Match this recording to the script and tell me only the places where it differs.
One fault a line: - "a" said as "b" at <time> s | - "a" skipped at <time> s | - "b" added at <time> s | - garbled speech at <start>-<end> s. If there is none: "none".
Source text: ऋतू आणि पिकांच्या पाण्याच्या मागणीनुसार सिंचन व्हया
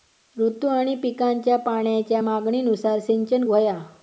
none